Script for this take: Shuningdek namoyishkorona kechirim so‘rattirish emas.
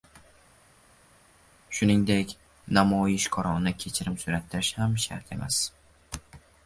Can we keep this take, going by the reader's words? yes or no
no